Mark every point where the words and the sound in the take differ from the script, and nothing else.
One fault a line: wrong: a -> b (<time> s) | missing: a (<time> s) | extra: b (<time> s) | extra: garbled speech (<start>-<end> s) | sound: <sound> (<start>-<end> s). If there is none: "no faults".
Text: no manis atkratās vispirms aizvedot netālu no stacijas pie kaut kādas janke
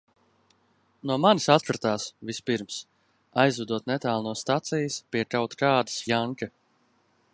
no faults